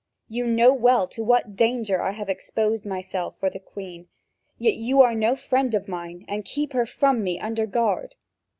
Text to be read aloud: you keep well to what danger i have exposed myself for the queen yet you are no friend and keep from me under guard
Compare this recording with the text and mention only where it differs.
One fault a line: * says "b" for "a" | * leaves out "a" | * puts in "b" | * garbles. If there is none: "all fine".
* says "know" for "keep"
* puts in "of mine"
* puts in "her"